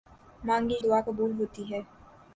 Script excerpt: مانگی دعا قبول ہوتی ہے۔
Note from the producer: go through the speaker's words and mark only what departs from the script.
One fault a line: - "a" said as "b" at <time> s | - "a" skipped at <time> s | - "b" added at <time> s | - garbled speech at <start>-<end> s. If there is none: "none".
none